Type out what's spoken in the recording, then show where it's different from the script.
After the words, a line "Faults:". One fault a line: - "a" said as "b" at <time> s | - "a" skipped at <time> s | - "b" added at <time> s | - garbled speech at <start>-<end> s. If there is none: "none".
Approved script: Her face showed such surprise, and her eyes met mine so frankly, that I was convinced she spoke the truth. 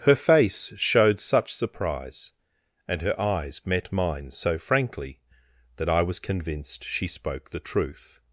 Her face showed such surprise, and her eyes met mine so frankly, that I was convinced she spoke the truth.
Faults:
none